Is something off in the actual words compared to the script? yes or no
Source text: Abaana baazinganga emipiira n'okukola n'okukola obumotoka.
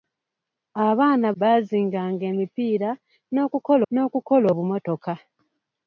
no